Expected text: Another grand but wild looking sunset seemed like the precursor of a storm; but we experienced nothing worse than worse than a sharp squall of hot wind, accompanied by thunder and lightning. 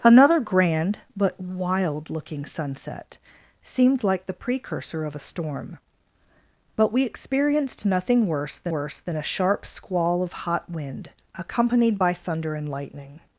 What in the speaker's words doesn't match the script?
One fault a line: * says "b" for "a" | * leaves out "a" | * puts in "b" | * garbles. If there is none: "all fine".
all fine